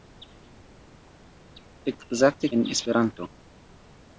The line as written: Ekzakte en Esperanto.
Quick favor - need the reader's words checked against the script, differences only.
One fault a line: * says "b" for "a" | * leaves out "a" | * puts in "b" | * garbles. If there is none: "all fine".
all fine